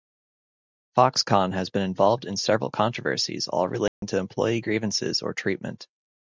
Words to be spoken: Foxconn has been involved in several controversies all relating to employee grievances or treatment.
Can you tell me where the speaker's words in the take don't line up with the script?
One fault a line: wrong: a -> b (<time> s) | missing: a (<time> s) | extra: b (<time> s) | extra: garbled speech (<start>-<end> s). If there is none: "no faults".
no faults